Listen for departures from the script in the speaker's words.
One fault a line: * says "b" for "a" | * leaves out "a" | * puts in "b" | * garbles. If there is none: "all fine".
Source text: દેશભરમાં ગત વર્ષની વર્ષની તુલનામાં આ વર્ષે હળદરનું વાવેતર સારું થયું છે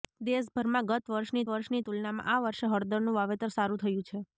all fine